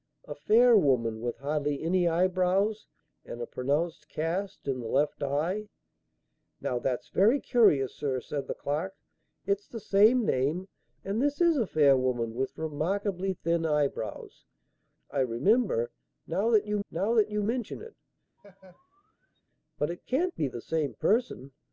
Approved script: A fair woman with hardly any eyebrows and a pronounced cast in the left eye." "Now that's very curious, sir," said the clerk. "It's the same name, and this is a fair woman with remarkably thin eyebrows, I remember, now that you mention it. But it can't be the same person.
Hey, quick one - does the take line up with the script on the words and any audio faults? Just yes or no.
no